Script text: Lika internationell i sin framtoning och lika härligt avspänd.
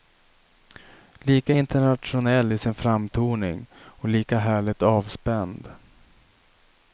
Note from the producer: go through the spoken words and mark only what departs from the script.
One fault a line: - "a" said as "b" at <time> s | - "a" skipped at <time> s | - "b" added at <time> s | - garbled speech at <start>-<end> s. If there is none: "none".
none